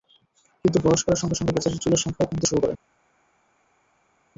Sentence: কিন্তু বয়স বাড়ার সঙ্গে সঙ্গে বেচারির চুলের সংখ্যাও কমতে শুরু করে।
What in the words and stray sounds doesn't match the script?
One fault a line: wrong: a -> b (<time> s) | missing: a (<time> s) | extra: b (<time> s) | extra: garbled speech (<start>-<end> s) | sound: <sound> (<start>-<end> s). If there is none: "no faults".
no faults